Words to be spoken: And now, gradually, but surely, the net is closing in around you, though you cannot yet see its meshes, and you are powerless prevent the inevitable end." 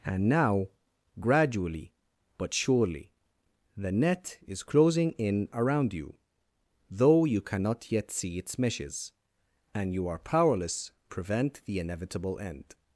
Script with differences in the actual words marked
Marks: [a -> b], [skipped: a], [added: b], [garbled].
And now, gradually, but surely, the net is closing in around you, though you cannot yet see its meshes, and you are powerless prevent the inevitable end."